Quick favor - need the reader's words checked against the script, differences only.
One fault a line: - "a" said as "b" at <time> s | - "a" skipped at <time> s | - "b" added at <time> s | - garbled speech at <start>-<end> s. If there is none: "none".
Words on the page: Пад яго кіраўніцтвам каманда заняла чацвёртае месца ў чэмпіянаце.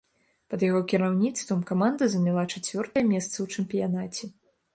none